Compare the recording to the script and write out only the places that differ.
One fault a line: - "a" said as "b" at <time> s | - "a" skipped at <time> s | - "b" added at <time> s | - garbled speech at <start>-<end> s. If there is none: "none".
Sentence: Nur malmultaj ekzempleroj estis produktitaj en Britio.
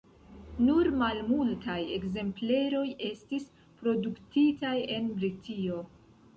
none